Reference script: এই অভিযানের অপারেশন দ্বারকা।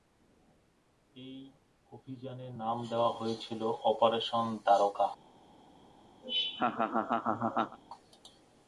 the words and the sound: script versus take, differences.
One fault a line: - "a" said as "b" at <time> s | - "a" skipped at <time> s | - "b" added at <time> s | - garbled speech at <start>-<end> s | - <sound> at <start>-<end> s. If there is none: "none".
- "নাম দেওয়া হয়েছিল" added at 2.6 s
- laugh at 6.2-7.8 s